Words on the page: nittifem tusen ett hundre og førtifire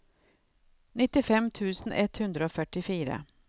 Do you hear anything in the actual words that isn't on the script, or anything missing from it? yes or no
no